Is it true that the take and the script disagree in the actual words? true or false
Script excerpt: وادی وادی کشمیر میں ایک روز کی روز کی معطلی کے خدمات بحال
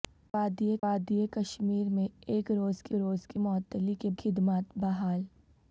false